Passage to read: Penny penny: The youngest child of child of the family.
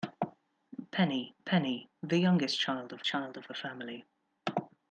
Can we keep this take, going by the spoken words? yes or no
yes